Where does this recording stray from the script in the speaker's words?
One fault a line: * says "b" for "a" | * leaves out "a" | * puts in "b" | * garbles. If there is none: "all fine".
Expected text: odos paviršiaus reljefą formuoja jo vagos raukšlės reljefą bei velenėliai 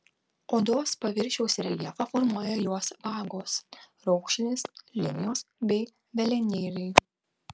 * says "jos" for "jo"
* says "linijos" for "reljefą"